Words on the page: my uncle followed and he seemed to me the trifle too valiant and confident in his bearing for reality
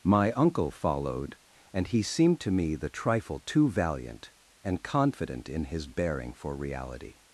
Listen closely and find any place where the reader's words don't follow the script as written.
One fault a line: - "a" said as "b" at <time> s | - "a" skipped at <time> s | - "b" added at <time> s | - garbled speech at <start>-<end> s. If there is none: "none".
none